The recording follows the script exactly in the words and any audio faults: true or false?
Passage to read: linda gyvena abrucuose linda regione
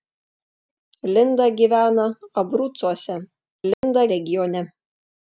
false